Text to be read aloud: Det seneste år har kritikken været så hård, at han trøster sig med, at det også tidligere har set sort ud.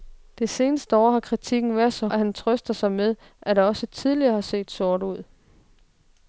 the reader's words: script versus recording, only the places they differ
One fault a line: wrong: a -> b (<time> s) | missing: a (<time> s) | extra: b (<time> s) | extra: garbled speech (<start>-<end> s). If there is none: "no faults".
missing: hård (2.1 s)